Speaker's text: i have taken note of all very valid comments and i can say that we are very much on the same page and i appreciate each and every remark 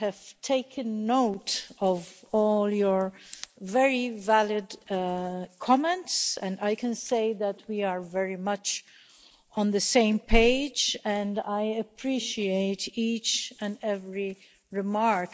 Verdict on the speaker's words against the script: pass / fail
fail